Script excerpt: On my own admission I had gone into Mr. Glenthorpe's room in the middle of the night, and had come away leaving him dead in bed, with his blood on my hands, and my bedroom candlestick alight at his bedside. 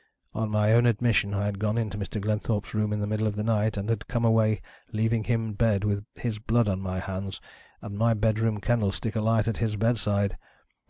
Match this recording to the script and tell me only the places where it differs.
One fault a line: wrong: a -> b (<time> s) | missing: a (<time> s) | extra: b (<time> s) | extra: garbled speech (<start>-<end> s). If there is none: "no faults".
missing: dead in (5.5 s)